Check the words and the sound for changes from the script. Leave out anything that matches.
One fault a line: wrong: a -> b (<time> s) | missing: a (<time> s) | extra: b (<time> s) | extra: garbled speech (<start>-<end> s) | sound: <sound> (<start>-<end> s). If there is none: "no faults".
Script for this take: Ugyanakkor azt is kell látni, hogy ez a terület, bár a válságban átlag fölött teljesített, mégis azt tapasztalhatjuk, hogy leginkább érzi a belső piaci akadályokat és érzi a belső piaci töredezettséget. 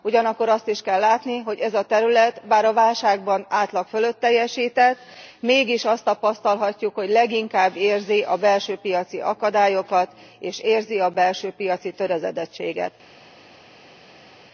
no faults